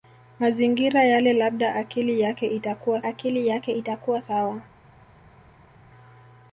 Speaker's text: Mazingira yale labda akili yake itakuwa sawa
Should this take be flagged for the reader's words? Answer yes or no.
yes